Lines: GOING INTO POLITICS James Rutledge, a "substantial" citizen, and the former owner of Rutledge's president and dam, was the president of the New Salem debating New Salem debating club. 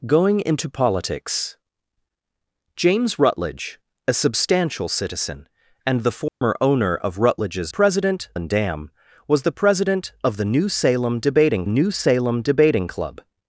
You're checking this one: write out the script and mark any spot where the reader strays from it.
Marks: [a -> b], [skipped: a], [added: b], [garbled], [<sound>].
GOING INTO POLITICS James Rutledge, a "substantial" citizen, and the former [dropout] owner of Rutledge's president and dam, was the president of the New Salem debating New Salem debating club.